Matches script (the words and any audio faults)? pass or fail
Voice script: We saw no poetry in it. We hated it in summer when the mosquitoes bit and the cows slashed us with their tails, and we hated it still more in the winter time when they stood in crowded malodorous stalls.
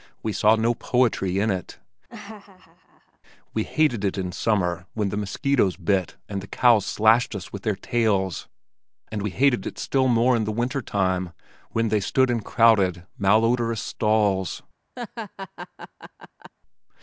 fail